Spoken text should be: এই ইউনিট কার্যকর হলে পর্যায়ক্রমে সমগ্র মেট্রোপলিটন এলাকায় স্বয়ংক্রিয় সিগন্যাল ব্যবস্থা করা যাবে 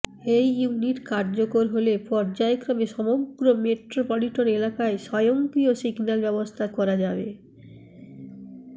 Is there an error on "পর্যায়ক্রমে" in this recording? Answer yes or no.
no